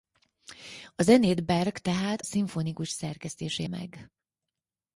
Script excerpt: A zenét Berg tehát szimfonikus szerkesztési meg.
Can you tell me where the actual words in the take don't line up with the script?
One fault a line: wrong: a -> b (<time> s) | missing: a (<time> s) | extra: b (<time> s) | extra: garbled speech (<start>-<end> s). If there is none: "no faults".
no faults